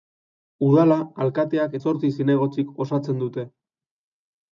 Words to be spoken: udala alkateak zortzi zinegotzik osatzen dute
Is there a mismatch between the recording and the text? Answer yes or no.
no